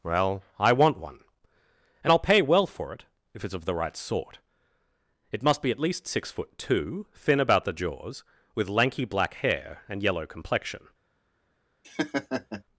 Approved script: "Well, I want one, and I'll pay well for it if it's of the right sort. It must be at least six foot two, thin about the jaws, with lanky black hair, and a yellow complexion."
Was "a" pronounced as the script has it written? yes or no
no